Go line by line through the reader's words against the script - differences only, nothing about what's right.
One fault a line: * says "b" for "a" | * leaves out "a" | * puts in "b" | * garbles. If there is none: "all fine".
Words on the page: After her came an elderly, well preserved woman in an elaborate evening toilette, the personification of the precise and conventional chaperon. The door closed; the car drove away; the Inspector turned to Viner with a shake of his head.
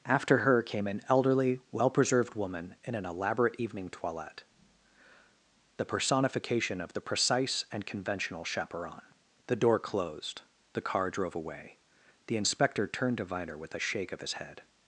all fine